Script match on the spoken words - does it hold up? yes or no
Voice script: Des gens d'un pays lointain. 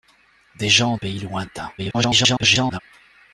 no